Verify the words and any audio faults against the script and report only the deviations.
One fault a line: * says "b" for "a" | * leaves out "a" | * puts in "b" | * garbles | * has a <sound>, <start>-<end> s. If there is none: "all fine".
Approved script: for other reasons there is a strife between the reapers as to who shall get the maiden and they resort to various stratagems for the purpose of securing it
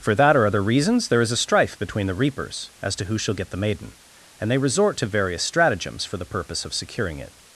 * puts in "that or"